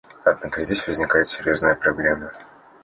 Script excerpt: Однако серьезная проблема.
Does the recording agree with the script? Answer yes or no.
no